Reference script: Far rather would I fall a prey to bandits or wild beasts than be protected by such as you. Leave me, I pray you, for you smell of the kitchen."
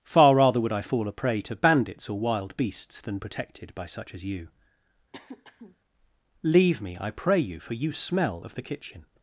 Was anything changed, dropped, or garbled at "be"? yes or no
yes